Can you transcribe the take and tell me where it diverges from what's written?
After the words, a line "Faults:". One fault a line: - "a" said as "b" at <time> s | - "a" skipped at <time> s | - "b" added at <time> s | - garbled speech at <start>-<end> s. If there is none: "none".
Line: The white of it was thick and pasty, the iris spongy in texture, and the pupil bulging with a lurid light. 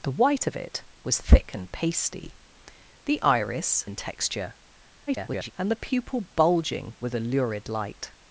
The white of it was thick and pasty, the iris in texture, [garbled] and the pupil bulging with a lurid light.
Faults:
- "spongy" skipped at 3.9 s
- garbled speech at 5.1-5.5 s